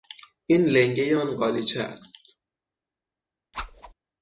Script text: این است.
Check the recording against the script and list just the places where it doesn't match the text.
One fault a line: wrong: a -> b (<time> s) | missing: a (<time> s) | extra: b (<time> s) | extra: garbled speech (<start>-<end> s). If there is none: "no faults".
extra: لنگهی آن قالیچه (0.7 s)